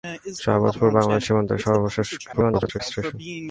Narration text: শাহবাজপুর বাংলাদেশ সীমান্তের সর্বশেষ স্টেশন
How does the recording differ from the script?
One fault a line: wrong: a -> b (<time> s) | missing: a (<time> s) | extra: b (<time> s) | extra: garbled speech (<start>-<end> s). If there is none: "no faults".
extra: garbled speech (2.3-2.8 s)